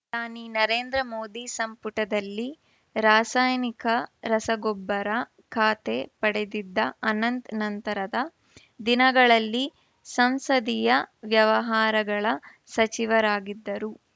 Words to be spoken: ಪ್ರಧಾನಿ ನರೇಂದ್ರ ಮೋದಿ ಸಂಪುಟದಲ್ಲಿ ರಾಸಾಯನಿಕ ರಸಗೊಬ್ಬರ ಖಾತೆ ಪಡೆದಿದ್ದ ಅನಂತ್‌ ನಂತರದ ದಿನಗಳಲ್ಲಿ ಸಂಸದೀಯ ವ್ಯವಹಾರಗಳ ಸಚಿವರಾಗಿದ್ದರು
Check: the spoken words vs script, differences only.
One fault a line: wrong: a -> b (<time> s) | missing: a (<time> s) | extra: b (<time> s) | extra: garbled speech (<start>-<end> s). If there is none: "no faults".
no faults